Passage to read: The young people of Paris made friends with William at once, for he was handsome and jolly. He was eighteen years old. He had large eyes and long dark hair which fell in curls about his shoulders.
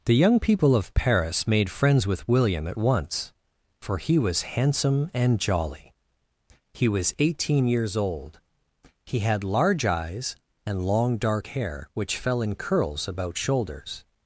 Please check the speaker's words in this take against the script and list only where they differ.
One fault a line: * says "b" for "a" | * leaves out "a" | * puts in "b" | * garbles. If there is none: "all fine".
* leaves out "his"